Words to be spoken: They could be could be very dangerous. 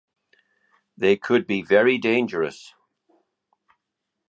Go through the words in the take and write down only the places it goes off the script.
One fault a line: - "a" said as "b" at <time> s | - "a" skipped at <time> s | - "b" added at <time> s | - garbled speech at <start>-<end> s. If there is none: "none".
- "could be" skipped at 1.6 s